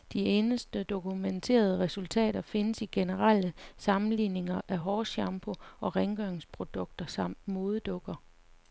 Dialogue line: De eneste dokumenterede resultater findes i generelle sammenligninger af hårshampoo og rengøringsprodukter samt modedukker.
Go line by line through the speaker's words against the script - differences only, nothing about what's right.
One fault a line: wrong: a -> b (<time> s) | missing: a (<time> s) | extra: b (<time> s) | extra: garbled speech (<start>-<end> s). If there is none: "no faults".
no faults